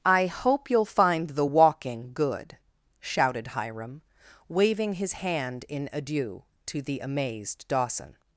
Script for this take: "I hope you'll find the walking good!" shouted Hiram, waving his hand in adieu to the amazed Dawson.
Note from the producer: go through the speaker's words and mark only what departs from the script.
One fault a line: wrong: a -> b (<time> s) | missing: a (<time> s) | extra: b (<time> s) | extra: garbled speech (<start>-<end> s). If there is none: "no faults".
no faults